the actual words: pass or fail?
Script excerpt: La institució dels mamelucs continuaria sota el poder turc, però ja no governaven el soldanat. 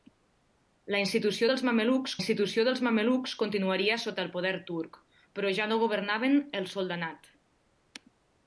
fail